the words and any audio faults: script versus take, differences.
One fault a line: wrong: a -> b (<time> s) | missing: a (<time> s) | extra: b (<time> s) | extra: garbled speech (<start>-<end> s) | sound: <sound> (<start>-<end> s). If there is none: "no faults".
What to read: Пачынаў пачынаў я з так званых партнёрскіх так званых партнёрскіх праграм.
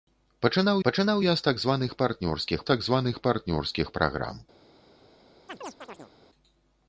sound: chirp (5.5-6.1 s)